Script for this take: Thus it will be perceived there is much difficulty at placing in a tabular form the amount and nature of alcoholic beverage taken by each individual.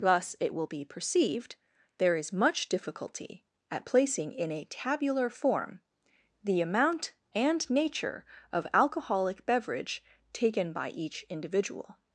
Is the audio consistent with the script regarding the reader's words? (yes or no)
yes